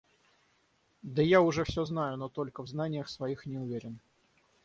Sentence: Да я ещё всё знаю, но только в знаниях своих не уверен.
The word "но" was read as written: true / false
true